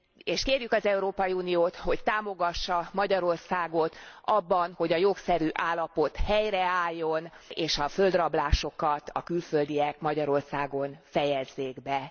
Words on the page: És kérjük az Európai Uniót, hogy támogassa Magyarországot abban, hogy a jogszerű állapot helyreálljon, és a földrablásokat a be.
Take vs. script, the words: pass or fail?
fail